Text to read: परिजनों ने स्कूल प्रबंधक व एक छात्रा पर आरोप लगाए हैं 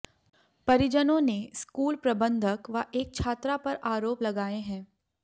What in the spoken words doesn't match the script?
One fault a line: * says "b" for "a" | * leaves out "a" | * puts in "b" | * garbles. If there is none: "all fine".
all fine